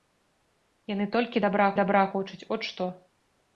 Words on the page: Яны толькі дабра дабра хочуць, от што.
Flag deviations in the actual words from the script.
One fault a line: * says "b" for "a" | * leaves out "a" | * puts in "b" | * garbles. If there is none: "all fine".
all fine